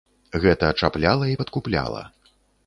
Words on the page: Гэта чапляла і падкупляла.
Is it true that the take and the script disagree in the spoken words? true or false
false